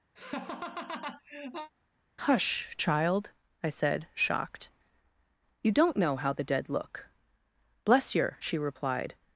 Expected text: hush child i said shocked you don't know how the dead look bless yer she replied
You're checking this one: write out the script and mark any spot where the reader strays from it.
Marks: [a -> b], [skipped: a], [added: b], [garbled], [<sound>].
[laugh] hush child i said shocked you don't know how the dead look bless yer she replied